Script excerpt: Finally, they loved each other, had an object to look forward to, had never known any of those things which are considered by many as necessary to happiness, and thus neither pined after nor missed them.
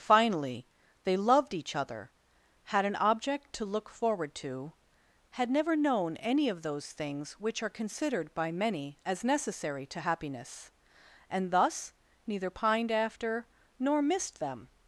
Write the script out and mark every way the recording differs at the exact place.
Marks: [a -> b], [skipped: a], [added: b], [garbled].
Finally, they loved each other, had an object to look forward to, had never known any of those things which are considered by many as necessary to happiness, and thus neither pined after nor missed them.